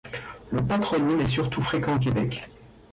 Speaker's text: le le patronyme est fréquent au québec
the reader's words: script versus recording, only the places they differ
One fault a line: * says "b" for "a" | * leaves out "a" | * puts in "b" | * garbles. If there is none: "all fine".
* leaves out "le"
* puts in "surtout"